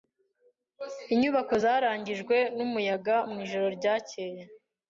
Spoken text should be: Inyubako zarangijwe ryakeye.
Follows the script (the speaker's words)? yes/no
no